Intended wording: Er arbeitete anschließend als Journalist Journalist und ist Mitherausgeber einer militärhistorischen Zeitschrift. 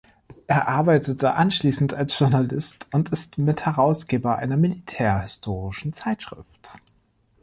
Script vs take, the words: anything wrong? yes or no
yes